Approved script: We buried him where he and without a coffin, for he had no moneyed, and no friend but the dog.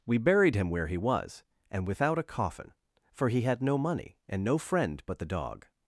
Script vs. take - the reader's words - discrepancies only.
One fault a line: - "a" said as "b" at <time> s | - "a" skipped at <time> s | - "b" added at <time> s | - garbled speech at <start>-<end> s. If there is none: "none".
- "was" added at 1.0 s
- "moneyed" said as "money" at 3.8 s